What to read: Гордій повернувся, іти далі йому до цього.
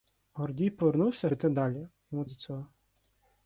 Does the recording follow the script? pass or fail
pass